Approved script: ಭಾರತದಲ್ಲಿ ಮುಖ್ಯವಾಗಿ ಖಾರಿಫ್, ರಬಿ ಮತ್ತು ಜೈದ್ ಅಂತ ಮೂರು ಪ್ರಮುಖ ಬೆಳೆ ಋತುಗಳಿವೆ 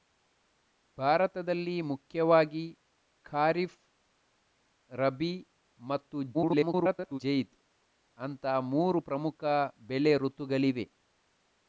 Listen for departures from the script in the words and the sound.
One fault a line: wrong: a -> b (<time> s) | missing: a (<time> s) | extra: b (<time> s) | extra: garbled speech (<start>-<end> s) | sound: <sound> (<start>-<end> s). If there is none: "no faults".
extra: garbled speech (6.3-7.2 s)